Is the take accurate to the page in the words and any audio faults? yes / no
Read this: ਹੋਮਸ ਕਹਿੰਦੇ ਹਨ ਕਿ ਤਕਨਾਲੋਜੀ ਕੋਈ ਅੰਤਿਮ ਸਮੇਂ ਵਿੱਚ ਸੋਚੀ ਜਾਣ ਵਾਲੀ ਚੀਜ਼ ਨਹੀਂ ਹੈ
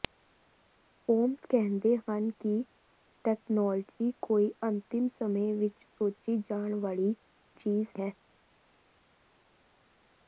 no